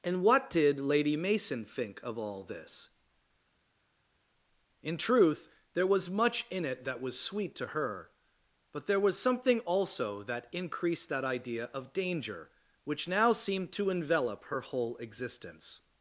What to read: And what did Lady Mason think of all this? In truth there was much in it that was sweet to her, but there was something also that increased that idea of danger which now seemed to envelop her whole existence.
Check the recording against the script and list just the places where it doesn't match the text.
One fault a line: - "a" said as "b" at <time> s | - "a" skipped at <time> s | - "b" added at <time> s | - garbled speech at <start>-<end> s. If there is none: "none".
none